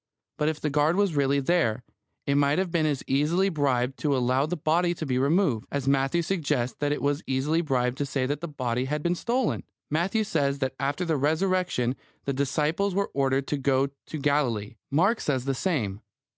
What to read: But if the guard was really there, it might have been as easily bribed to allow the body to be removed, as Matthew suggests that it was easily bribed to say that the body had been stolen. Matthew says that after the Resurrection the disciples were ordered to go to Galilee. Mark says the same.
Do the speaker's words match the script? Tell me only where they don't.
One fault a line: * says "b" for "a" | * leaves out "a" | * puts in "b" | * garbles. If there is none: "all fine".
all fine